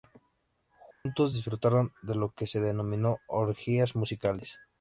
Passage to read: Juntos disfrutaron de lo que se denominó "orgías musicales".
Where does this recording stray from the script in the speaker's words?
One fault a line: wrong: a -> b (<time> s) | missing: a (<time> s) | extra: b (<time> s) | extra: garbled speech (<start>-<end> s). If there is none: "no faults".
no faults